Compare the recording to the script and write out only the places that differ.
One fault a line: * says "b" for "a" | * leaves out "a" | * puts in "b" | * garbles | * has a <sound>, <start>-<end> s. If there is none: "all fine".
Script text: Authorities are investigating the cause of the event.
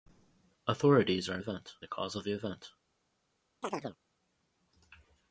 * says "event" for "investigating"
* has a chirp, 3.6-4.0 s